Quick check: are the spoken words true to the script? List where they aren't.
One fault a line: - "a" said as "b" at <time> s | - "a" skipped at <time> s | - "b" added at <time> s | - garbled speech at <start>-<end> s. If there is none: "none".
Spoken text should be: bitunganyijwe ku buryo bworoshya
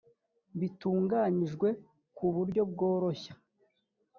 none